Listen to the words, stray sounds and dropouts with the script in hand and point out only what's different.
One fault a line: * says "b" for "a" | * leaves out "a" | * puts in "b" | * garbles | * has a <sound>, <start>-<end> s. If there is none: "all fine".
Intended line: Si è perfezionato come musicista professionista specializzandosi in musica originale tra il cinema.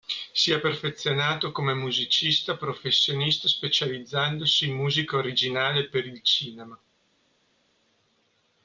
* says "per" for "tra"